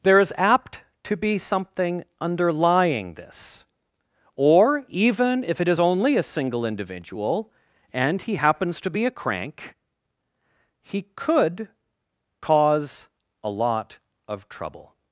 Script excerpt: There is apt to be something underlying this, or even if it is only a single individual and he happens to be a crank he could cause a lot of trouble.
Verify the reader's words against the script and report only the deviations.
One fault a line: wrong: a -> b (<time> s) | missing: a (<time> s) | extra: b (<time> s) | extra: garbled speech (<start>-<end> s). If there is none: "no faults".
no faults